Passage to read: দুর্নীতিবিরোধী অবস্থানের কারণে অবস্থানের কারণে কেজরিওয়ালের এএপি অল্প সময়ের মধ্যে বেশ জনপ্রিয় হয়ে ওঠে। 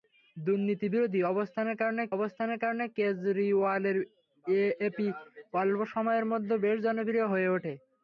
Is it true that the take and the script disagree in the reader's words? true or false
false